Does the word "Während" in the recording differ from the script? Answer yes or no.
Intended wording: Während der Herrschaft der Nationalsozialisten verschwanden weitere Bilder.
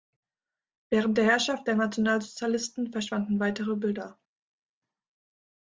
no